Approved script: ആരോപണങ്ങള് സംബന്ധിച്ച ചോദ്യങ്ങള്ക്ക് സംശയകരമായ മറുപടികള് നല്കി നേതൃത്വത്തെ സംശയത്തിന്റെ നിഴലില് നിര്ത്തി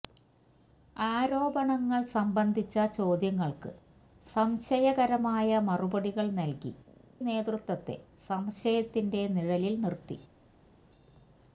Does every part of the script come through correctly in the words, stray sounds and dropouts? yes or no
yes